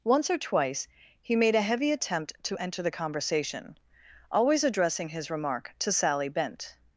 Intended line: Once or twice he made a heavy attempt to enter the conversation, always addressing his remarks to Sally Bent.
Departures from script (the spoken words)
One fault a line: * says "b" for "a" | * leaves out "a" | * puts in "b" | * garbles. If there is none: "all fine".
* says "remark" for "remarks"